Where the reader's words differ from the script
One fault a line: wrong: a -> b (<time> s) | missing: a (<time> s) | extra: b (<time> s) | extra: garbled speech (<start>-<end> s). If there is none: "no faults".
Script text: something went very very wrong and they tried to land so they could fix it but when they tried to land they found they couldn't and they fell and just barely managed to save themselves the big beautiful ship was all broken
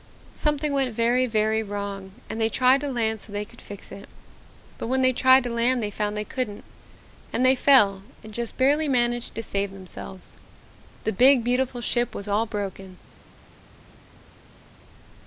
no faults